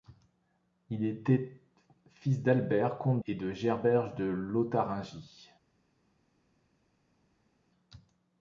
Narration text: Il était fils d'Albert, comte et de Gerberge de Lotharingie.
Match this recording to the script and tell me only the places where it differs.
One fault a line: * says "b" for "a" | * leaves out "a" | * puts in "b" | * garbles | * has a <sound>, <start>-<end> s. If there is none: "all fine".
all fine